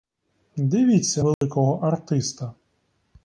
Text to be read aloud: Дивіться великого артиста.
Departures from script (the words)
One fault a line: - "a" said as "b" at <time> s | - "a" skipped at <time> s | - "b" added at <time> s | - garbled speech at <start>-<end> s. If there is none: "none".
none